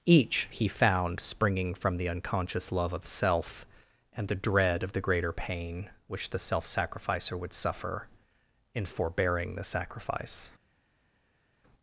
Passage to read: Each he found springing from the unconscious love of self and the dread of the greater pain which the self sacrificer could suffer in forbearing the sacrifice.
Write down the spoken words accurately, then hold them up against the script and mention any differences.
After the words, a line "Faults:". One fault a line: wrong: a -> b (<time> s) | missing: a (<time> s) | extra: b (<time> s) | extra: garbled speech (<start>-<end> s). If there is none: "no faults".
Each he found springing from the unconscious love of self and the dread of the greater pain which the self sacrificer would suffer in forbearing the sacrifice.
Faults:
wrong: could -> would (7.4 s)